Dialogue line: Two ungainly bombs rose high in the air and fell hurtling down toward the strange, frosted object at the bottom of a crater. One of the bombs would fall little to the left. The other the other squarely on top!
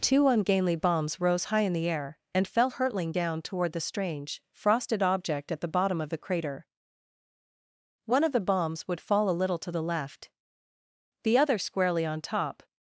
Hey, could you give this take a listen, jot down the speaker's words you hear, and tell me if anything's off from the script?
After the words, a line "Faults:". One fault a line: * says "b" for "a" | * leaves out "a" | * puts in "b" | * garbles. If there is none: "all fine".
Two ungainly bombs rose high in the air and fell hurtling down toward the strange, frosted object at the bottom of the crater. One of the bombs would fall a little to the left. The other squarely on top!
Faults:
* says "the" for "a"
* puts in "a"
* leaves out "the other"